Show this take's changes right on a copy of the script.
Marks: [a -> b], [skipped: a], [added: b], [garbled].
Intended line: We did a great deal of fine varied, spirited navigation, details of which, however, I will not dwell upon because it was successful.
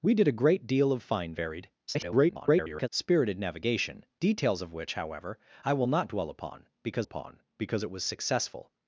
We did a great deal of fine varied, [garbled] spirited navigation, details of which, however, I will not dwell upon because [added: upon because] it was successful.